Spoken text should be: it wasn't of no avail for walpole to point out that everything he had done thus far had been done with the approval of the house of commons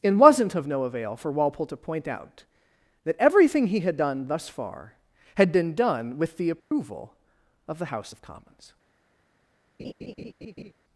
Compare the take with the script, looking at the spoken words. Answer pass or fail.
pass